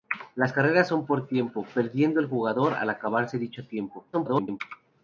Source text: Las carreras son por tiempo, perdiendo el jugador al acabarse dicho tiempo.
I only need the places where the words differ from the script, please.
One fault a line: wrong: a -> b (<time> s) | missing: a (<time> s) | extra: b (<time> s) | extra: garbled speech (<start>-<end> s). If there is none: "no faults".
extra: garbled speech (4.1-4.6 s)